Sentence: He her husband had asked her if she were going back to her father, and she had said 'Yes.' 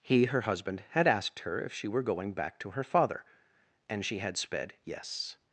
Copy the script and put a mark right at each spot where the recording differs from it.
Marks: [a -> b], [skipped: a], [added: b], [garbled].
He her husband had asked her if she were going back to her father, and she had [said -> sped] 'Yes.'